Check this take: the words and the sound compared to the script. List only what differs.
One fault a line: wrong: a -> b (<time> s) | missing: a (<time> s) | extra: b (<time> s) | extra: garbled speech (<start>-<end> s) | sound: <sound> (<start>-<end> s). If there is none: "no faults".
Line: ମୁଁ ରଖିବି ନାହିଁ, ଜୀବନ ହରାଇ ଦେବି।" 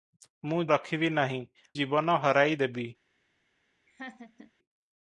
sound: laugh (3.9-4.5 s)